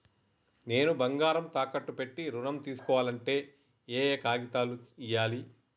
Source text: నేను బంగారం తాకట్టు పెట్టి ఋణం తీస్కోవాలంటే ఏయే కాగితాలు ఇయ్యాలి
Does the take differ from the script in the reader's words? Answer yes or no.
no